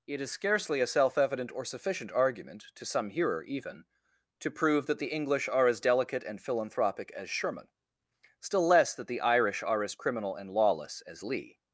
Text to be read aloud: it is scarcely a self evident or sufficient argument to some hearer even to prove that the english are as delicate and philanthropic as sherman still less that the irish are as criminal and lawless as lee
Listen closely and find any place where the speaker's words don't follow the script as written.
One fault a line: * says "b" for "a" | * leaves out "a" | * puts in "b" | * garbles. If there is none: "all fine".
all fine